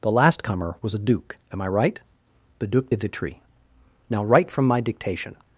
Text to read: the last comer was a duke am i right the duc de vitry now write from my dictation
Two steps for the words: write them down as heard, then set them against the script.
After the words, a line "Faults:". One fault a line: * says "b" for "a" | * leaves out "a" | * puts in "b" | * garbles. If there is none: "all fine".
the last comer was a duke am i right the duc de vitry now write from my dictation
Faults:
all fine